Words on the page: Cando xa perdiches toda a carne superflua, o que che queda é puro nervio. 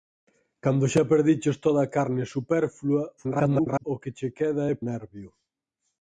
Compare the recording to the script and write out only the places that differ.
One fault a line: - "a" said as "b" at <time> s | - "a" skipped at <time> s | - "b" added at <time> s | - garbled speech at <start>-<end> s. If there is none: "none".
- garbled speech at 3.2-3.8 s
- "puro" skipped at 4.8 s